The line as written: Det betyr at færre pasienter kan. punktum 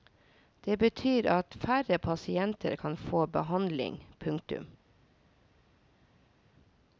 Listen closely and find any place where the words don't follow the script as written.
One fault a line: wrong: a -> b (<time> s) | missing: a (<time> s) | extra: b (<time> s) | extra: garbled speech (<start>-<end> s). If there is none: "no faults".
extra: få behandling (3.0 s)